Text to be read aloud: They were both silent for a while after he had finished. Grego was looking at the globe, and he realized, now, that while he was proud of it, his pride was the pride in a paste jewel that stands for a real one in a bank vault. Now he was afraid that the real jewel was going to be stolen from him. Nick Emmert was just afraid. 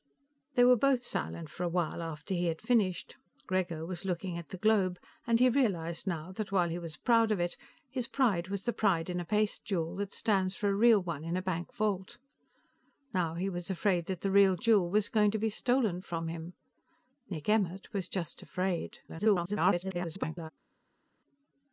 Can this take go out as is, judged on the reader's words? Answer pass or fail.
fail